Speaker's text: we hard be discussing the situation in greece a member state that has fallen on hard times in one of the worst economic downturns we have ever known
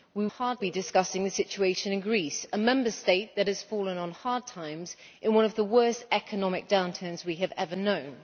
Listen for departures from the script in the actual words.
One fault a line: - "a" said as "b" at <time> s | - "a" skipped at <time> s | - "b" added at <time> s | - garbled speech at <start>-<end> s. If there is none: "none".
none